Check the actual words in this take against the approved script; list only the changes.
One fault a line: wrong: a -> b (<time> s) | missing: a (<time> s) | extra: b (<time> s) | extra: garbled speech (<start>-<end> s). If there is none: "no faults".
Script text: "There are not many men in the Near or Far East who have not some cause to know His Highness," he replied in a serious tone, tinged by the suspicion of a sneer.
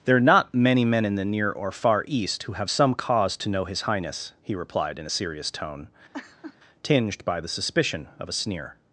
missing: not (2.7 s)